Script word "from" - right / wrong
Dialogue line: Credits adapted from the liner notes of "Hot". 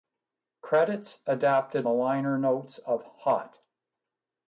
wrong